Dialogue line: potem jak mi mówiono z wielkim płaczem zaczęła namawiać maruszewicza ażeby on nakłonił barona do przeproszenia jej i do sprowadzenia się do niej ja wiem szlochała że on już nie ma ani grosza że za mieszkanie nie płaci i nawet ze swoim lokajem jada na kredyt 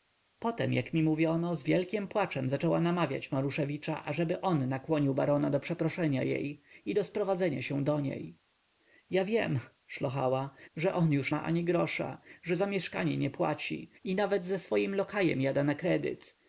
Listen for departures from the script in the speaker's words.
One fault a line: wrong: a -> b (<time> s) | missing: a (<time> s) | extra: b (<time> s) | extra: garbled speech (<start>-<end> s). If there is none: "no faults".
missing: nie (11.3 s)